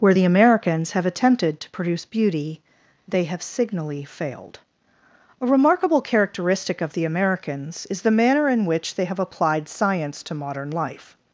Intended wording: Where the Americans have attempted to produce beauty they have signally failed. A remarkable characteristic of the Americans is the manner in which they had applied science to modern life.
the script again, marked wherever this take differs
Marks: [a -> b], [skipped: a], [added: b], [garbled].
Where the Americans have attempted to produce beauty they have signally failed. A remarkable characteristic of the Americans is the manner in which they [had -> have] applied science to modern life.